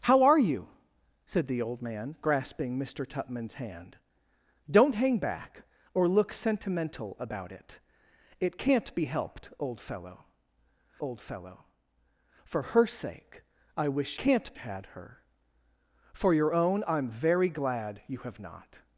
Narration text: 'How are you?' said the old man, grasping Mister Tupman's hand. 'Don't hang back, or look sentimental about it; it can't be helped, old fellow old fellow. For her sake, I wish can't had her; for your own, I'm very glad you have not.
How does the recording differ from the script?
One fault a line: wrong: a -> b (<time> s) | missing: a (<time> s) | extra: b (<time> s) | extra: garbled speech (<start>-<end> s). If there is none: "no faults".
no faults